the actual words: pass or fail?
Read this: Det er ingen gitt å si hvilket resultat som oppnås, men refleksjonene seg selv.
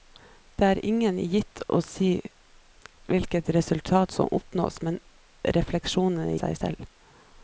pass